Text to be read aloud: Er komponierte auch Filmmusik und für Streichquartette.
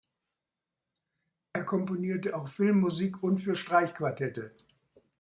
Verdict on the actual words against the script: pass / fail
pass